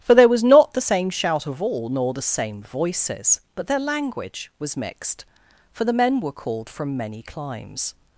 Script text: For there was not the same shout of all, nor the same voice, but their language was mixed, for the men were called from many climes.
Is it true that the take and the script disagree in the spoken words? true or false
true